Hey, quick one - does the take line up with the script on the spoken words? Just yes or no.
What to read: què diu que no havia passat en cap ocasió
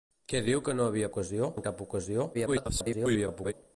no